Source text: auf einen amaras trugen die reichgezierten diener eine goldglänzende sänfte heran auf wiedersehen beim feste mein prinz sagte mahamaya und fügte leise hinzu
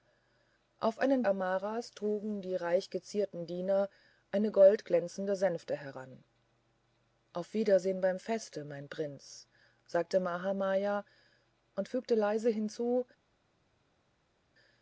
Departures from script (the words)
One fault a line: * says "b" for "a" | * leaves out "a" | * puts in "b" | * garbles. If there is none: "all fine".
all fine